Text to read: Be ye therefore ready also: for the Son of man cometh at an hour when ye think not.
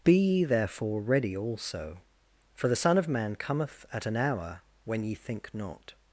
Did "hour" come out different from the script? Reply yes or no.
no